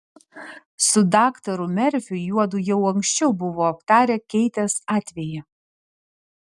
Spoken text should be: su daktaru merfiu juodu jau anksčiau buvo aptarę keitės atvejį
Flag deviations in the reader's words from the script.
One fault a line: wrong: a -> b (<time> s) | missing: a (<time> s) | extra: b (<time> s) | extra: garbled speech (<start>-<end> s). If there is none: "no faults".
no faults